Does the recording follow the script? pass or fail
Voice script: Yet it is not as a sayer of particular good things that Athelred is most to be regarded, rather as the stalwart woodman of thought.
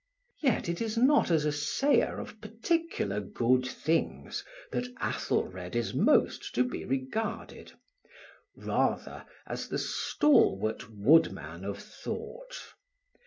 pass